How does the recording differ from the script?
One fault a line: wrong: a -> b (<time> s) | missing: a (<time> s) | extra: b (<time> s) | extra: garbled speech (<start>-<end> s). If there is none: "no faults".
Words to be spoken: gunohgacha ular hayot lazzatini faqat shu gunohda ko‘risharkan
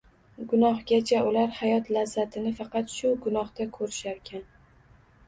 no faults